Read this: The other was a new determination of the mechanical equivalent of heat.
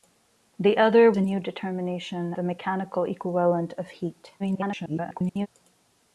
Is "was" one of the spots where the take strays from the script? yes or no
yes